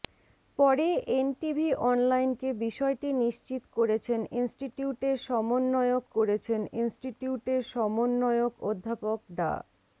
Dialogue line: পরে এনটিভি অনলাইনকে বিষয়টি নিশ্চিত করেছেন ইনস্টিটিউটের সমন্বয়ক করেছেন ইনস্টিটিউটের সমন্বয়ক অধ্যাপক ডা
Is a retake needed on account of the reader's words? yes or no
no